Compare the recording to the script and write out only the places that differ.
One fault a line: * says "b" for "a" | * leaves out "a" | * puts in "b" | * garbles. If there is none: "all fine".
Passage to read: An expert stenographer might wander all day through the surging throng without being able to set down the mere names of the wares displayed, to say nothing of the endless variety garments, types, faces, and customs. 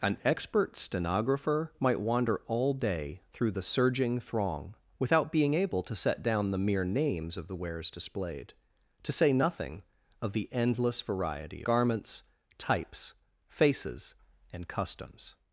all fine